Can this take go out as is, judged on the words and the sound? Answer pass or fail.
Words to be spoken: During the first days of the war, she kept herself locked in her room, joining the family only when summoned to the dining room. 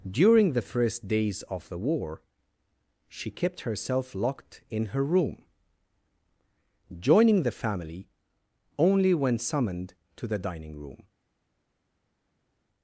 pass